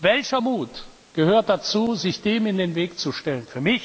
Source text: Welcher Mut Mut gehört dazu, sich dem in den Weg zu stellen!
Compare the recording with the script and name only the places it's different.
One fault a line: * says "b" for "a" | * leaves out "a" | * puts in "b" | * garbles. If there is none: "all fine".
* leaves out "Mut"